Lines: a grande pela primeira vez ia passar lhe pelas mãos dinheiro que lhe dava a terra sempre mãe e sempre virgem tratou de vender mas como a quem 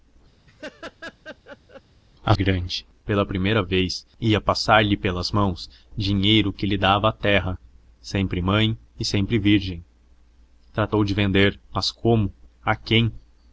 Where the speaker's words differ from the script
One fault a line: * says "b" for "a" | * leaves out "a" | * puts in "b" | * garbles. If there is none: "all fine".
all fine